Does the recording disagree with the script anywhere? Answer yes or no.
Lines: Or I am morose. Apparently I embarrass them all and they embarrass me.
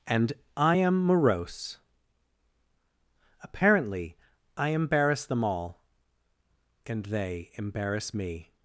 yes